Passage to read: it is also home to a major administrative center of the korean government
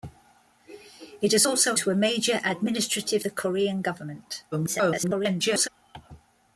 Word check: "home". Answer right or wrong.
wrong